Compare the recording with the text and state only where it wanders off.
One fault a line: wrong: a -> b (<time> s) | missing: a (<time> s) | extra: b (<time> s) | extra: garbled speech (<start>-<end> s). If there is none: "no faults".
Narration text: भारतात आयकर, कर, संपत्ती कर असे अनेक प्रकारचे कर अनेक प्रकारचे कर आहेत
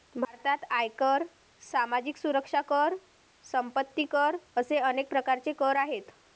extra: सामाजिक सुरक्षा (1.6 s)
missing: अनेक प्रकारचे कर (5.8 s)